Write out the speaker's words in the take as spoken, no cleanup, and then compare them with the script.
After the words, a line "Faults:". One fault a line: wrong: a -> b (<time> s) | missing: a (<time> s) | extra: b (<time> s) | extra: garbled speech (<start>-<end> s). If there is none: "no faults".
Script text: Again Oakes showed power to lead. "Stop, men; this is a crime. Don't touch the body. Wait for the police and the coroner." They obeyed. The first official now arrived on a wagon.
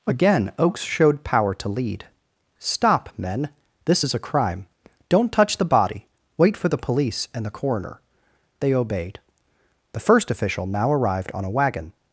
Again Oakes showed power to lead. "Stop, men; this is a crime. Don't touch the body. Wait for the police and the coroner." They obeyed. The first official now arrived on a wagon.
Faults:
no faults